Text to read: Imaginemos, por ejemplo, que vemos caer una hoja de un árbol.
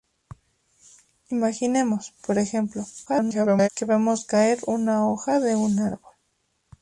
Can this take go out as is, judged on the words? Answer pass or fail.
fail